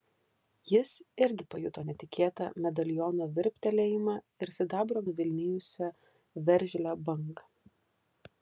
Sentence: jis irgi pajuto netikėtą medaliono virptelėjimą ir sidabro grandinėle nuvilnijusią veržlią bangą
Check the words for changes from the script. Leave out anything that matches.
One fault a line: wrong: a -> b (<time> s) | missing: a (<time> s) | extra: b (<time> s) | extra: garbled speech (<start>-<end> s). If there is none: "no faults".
missing: grandinėle (5.0 s)